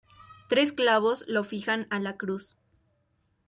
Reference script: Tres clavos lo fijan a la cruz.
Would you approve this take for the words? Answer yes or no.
yes